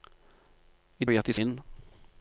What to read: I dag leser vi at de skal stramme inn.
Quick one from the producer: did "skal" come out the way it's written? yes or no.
no